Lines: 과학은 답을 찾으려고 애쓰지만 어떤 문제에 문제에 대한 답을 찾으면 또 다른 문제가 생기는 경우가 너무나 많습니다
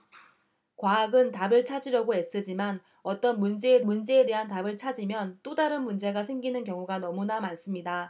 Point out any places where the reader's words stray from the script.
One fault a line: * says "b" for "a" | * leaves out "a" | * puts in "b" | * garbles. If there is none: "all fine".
all fine